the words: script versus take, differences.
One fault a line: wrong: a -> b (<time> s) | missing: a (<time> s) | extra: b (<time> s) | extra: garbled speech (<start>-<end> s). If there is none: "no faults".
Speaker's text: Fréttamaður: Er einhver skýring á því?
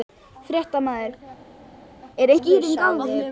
missing: einhver (2.4 s)